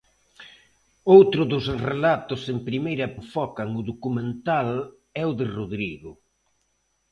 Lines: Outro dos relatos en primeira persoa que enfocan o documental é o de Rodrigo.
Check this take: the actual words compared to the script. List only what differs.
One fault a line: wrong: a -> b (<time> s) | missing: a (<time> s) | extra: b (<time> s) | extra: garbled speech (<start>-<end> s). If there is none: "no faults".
missing: persoa que (3.1 s)